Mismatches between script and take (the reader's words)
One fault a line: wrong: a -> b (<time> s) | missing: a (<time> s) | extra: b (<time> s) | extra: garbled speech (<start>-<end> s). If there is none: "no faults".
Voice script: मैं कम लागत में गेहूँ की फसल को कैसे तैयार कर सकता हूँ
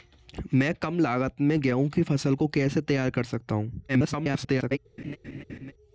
extra: garbled speech (3.9-4.8 s)